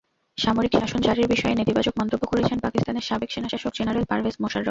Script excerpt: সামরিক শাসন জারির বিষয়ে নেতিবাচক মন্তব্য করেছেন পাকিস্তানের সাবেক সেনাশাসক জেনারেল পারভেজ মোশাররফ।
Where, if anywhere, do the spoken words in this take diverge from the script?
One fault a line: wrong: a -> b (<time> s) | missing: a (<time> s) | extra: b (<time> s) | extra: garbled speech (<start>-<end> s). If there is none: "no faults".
no faults